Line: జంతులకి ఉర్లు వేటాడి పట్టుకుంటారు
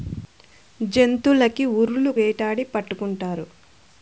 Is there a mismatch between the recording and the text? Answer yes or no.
no